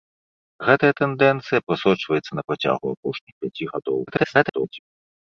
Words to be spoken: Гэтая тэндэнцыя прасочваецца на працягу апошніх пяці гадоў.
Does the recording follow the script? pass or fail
fail